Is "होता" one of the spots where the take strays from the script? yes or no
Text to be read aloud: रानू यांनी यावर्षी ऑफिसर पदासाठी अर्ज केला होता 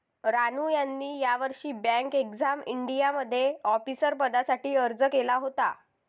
no